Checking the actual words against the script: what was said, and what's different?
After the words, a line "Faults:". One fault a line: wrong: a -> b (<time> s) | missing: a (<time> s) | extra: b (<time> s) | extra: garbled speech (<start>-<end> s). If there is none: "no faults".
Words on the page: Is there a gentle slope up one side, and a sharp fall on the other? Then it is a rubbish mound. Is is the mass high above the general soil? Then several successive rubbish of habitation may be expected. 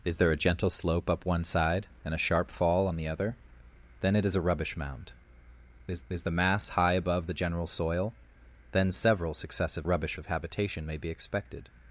Is there a gentle slope up one side, and a sharp fall on the other? Then it is a rubbish mound. Is is the mass high above the general soil? Then several successive rubbish of habitation may be expected.
Faults:
no faults